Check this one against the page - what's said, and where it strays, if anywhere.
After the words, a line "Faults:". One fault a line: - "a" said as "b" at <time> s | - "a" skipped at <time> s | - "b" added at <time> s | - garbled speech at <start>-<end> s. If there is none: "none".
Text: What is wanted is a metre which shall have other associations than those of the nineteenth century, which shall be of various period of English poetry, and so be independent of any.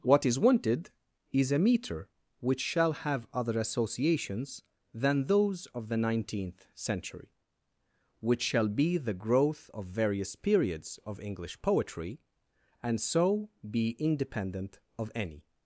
What is wanted is a metre which shall have other associations than those of the nineteenth century, which shall be the growth of various periods of English poetry, and so be independent of any.
Faults:
- "the growth" added at 9.0 s
- "period" said as "periods" at 10.3 s